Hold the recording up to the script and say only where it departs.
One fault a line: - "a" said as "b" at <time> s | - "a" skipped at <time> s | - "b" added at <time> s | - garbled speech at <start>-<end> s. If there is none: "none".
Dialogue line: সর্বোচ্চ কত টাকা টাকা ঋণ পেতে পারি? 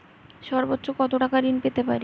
- "টাকা" skipped at 1.4 s